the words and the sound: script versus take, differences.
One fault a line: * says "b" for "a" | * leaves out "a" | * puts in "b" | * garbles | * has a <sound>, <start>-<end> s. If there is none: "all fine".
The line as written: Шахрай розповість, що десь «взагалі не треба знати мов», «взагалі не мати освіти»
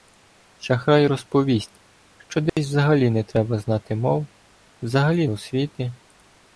* has a dropout, 2.5-2.6 s
* leaves out "не мати"